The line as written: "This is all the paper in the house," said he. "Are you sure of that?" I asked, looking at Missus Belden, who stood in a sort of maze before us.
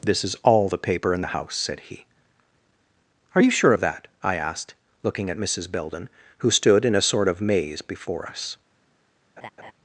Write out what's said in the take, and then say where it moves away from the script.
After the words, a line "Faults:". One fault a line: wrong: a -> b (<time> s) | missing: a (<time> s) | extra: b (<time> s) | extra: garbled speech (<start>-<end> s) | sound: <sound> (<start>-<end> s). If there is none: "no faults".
"This is all the paper in the house," said he. "Are you sure of that?" I asked, looking at Missus Belden, who stood in a sort of maze before us.
Faults:
sound: laugh (9.4-9.7 s)